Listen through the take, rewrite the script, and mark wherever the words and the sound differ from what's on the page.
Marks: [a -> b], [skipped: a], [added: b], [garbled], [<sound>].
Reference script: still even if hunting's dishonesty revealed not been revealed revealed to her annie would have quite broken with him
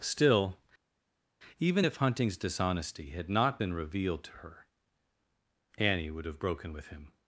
still even if hunting's dishonesty [revealed -> had] not been revealed [skipped: revealed] to her annie would have [skipped: quite] broken with him